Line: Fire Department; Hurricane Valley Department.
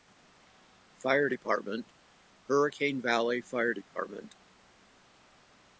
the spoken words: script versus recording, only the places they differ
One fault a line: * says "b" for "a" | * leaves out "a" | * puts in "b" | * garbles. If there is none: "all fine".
* puts in "Fire"